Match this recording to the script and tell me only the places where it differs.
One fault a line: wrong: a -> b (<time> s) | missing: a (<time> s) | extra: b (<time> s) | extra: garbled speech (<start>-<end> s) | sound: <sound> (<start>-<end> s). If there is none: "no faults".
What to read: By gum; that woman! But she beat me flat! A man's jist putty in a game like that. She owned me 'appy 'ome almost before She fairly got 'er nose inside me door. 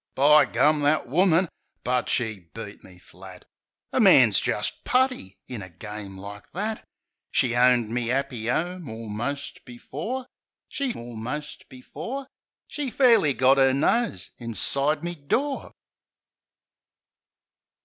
extra: almost before She (11.0 s)